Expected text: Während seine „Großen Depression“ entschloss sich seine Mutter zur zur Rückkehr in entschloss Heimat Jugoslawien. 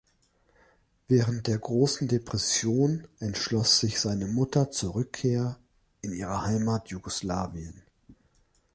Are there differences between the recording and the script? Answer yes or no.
yes